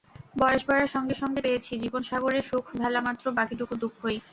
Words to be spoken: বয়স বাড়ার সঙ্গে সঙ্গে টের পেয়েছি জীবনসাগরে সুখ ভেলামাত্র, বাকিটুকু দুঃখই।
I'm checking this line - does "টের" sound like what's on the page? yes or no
no